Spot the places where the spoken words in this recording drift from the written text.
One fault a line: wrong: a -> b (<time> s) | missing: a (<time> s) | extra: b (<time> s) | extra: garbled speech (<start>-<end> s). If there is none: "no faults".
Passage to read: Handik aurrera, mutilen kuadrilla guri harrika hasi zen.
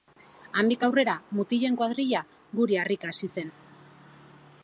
no faults